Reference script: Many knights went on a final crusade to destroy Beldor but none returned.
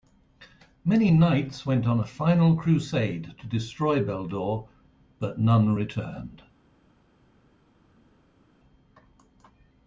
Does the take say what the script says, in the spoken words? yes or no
yes